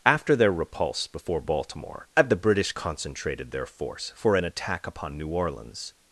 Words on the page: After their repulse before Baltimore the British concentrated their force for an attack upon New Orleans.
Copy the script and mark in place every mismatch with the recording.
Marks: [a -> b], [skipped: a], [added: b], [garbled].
After their repulse before Baltimore the British concentrated their force for an attack upon New Orleans.